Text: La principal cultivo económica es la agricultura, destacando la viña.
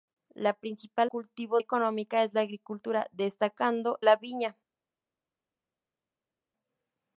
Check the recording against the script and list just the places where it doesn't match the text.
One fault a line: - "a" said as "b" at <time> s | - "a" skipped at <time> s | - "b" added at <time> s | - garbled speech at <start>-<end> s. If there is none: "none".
none